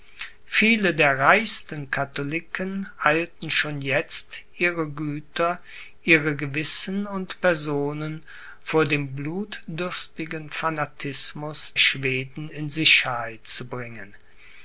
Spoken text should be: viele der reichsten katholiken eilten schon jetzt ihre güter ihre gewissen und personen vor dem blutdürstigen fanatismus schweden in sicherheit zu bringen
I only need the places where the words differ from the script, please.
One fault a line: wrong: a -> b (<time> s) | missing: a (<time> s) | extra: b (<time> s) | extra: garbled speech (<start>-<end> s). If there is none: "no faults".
no faults